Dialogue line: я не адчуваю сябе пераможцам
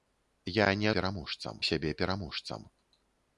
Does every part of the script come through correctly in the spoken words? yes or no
no